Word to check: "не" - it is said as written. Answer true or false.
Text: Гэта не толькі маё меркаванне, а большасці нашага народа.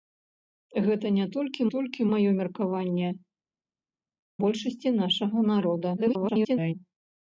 true